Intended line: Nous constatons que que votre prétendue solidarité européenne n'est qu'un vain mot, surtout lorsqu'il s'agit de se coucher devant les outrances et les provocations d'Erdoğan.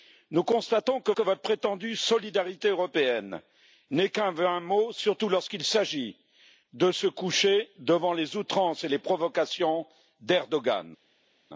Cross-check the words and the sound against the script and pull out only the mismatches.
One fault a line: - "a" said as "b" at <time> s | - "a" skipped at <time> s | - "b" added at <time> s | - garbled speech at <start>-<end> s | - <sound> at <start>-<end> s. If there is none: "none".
none